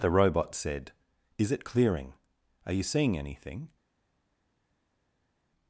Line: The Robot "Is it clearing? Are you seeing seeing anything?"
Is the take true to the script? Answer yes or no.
no